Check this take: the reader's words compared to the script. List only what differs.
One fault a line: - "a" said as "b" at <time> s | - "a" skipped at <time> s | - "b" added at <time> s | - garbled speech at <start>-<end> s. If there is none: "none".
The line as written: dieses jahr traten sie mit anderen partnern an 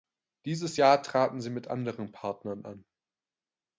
none